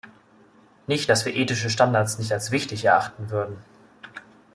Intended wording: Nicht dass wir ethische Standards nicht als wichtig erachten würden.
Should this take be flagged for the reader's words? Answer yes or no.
no